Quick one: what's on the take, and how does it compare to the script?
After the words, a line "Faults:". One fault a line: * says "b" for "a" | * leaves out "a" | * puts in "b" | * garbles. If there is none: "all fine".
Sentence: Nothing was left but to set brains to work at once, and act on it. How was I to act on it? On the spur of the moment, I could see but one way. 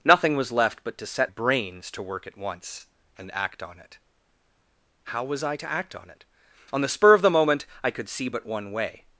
Nothing was left but to set brains to work at once, and act on it. How was I to act on it? On the spur of the moment, I could see but one way.
Faults:
all fine